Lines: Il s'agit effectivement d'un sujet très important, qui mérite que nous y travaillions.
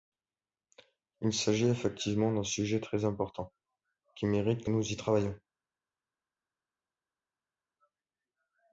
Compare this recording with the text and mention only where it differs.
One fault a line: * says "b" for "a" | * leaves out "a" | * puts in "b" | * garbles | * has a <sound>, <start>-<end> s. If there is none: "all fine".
all fine